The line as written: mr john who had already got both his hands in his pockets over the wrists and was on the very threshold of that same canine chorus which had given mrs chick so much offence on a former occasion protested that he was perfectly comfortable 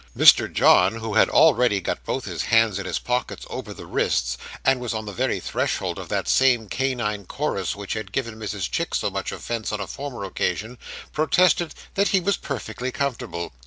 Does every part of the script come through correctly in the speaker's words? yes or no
yes